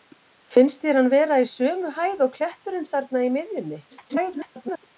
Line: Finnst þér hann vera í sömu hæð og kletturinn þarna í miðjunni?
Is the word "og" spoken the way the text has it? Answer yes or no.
yes